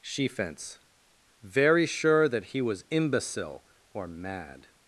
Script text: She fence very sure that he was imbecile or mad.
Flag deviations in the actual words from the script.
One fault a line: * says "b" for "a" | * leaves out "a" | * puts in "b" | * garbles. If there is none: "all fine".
all fine